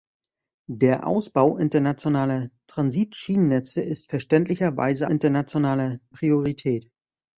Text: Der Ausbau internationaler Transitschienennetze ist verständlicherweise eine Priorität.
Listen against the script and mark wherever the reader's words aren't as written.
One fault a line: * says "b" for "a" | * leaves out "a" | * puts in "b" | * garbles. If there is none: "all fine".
* says "internationaler" for "eine"